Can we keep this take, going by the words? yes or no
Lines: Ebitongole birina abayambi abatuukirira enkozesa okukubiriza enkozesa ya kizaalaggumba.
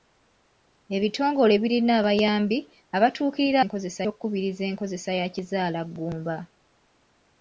yes